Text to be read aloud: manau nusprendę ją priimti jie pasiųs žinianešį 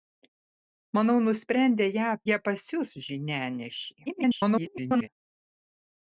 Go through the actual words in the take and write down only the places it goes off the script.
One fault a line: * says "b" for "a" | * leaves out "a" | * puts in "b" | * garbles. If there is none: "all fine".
* leaves out "priimti"
* garbles